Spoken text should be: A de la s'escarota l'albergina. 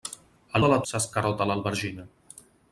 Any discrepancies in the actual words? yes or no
no